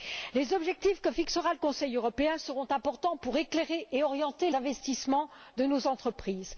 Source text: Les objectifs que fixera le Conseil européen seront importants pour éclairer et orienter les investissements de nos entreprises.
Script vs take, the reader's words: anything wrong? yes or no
yes